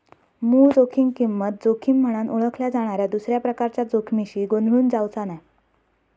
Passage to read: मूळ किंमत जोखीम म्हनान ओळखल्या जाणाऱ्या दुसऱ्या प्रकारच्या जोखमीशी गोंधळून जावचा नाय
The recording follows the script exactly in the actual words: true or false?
false